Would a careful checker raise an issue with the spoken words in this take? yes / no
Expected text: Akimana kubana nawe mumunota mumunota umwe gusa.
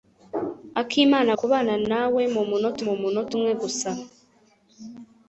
no